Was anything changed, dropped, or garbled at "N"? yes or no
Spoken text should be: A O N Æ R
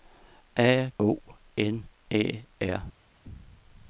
no